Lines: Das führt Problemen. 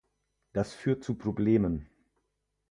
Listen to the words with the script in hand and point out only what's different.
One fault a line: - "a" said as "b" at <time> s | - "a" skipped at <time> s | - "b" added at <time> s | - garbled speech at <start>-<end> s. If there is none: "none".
- "zu" added at 1.0 s